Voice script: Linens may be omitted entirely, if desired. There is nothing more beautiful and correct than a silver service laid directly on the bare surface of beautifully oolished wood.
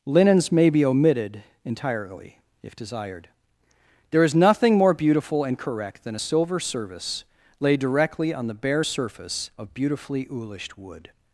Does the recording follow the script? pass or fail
pass